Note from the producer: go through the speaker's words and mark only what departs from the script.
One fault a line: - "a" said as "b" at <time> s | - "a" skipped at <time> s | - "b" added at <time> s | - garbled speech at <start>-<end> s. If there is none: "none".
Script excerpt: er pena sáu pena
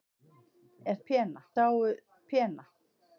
none